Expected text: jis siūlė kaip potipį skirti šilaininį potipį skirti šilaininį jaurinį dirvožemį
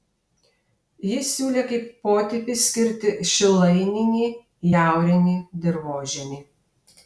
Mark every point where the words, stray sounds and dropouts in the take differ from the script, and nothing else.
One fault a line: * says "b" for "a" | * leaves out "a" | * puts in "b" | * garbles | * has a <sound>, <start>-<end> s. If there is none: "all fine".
* leaves out "potipį skirti šilaininį"